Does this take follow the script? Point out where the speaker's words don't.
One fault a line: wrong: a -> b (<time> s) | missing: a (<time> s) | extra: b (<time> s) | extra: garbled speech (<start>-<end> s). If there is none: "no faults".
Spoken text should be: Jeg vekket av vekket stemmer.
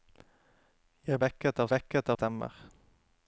no faults